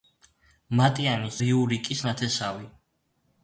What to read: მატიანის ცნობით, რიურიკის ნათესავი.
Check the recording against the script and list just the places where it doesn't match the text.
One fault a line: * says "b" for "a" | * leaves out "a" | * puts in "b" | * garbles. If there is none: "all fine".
* leaves out "ცნობით"